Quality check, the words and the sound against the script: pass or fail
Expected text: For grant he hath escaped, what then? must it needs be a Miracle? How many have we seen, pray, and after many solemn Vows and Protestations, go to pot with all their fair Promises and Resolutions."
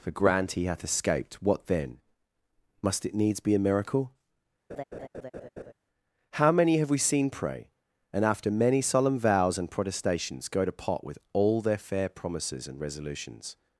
fail